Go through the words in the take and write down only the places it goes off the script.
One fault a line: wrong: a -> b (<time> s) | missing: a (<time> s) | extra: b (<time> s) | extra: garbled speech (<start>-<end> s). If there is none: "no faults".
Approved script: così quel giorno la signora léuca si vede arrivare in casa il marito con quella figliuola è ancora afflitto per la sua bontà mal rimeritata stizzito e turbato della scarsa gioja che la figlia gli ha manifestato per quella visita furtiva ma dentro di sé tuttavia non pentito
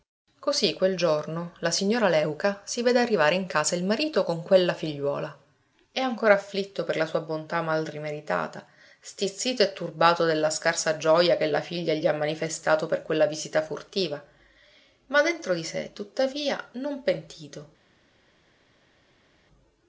no faults